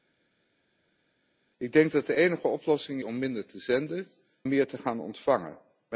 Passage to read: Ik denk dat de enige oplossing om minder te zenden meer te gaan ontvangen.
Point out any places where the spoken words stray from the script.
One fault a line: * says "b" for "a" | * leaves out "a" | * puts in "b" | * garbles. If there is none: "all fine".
all fine